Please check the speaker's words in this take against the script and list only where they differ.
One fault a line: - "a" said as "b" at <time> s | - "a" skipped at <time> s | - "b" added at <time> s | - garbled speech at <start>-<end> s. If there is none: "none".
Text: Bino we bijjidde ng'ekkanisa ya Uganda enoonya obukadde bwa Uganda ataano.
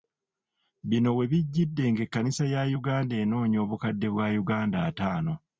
none